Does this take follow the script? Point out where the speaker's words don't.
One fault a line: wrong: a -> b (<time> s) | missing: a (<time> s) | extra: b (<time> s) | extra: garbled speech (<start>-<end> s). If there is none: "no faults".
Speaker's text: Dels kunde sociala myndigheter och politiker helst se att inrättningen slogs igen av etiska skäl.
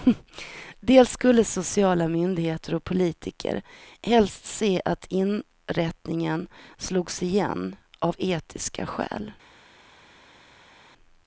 wrong: kunde -> skulle (1.1 s)